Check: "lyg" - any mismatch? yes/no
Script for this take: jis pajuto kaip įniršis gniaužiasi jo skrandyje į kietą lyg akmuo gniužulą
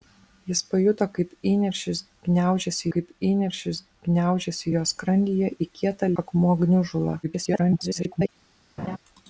yes